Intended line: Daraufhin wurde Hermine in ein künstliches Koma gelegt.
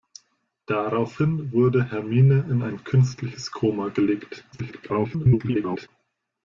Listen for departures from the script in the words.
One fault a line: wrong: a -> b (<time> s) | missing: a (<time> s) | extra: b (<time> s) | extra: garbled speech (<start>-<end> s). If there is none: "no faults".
extra: garbled speech (4.5-5.9 s)